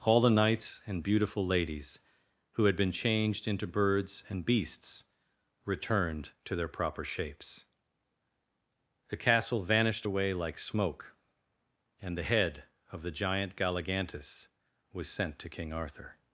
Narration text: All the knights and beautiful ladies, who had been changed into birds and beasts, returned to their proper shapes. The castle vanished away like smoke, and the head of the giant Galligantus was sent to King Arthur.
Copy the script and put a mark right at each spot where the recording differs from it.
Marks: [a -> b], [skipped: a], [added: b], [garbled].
All the knights and beautiful ladies, who had been changed into birds and beasts, returned to their proper shapes. The castle vanished away like smoke, and the head of the giant Galligantus was sent to King Arthur.